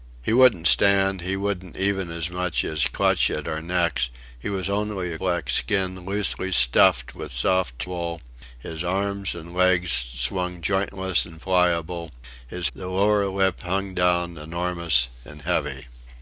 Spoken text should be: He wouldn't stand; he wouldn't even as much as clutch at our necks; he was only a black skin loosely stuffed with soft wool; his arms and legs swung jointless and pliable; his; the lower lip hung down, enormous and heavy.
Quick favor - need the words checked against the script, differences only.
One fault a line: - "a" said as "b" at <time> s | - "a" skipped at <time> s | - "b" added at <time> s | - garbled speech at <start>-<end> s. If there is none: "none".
none